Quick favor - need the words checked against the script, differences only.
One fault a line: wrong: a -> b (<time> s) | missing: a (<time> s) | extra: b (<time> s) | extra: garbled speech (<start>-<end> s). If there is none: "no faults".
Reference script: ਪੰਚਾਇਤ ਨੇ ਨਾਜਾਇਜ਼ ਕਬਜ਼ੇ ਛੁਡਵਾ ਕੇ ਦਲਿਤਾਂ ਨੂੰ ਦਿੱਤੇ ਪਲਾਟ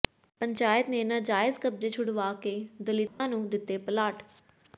no faults